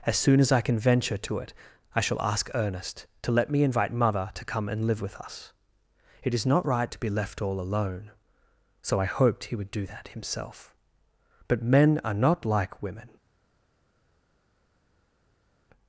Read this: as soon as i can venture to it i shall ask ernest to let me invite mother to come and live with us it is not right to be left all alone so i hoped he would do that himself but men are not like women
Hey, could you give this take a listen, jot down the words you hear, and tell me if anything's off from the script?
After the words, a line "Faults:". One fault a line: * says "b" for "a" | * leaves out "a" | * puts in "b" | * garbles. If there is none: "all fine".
as soon as i can venture to it i shall ask ernest to let me invite mother to come and live with us it is not right to be left all alone so i hoped he would do that himself but men are not like women
Faults:
all fine